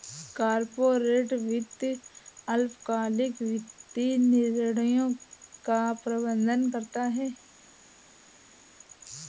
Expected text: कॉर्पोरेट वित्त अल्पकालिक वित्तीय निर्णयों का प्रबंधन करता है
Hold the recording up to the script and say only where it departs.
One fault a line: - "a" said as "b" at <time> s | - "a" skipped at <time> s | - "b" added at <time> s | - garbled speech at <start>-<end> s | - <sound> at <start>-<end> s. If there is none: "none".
none